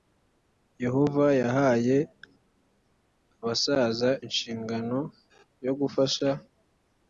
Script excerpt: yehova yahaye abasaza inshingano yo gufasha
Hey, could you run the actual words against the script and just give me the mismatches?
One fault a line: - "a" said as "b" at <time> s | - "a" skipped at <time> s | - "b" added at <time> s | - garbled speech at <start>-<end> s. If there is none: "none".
none